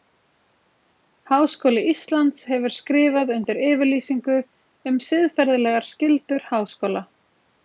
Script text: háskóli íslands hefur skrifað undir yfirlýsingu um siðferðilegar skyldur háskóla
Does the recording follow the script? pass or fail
pass